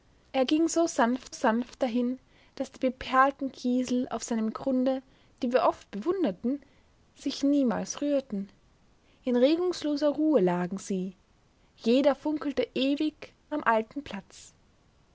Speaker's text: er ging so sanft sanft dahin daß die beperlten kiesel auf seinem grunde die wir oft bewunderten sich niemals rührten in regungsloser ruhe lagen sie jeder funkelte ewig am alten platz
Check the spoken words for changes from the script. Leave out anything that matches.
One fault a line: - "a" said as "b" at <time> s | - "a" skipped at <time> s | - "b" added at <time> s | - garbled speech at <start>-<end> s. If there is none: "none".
none